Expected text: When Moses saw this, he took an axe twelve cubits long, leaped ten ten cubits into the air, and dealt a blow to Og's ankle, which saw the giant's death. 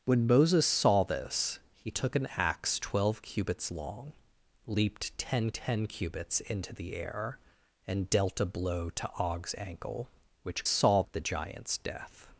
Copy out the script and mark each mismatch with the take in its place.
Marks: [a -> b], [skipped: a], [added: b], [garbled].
When Moses saw this, he took an axe twelve cubits long, leaped ten ten cubits into the air, and dealt a blow to Og's ankle, which saw the giant's death.